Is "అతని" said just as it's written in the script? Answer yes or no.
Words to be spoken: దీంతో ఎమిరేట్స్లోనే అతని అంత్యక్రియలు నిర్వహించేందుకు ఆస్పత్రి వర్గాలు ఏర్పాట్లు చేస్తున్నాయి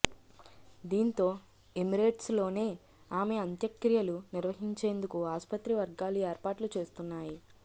no